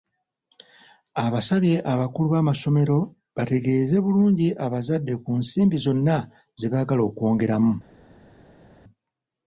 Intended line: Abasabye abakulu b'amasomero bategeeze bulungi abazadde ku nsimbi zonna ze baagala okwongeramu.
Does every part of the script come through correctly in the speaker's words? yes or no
yes